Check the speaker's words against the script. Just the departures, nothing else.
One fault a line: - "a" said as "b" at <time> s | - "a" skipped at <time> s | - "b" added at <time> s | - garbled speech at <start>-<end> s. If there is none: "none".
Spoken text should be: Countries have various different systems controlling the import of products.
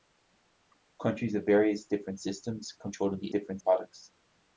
- "import" said as "different" at 3.3 s